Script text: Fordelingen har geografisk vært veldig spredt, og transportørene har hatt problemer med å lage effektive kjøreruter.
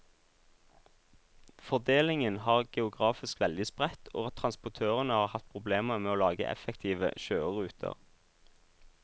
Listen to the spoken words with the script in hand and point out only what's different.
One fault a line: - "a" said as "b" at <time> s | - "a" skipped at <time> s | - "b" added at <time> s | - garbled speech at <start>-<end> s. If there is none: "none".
- "vært" skipped at 3.4 s